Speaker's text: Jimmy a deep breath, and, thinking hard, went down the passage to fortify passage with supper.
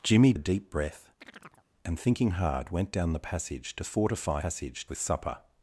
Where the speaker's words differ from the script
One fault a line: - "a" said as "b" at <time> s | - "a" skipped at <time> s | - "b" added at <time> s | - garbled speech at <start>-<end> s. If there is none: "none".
none